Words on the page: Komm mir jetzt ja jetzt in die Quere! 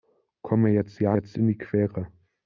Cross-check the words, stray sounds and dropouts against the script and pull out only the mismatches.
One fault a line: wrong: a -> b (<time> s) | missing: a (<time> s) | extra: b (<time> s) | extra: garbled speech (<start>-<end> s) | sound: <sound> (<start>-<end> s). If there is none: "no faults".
no faults